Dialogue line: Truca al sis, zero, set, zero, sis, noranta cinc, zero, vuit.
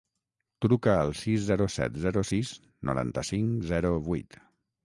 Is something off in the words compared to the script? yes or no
no